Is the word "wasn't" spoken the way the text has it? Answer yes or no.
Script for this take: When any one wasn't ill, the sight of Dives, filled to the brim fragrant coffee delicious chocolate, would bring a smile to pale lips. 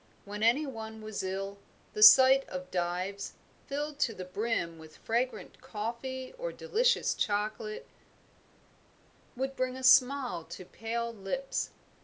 no